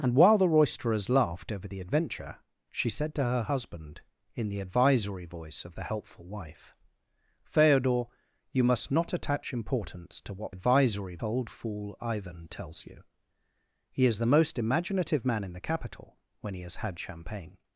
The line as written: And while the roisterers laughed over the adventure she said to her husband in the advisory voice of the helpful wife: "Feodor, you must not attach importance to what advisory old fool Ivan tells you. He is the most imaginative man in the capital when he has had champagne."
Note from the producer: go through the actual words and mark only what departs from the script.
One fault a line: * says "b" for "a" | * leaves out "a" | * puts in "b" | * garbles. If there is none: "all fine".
all fine